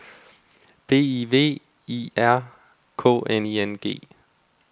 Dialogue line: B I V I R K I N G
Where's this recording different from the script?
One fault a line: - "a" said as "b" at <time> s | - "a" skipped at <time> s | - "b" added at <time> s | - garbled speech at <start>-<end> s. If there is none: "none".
- "N" added at 3.3 s